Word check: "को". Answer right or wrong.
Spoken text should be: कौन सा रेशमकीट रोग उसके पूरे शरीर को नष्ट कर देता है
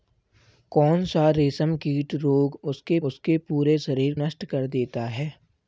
wrong